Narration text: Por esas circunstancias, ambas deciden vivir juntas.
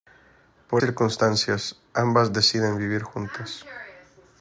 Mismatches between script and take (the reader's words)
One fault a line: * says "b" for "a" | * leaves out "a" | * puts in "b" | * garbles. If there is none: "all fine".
* leaves out "esas"